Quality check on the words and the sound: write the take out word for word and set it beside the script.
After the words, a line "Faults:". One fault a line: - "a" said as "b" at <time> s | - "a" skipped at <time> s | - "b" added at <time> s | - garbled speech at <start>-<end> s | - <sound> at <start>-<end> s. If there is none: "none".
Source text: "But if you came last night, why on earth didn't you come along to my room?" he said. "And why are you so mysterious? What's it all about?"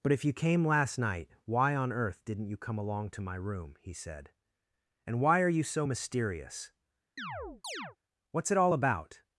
"But if you came last night, why on earth didn't you come along to my room?" he said. "And why are you so mysterious? What's it all about?"
Faults:
- chirp at 7.2-8.0 s